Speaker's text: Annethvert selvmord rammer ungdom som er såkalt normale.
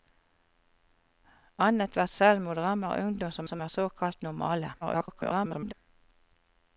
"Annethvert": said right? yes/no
yes